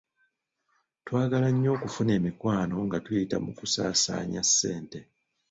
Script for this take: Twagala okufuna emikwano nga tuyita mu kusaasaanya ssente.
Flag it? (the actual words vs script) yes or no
yes